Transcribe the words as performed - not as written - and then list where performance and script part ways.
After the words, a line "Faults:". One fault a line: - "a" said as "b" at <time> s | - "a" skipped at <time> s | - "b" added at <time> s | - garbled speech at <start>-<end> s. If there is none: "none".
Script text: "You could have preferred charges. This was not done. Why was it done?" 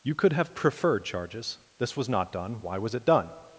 "You could have preferred charges. This was not done. Why was it done?"
Faults:
none